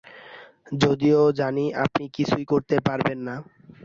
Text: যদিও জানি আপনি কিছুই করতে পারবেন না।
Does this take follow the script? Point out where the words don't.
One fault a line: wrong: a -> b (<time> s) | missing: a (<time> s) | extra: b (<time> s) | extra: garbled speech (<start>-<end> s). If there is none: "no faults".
no faults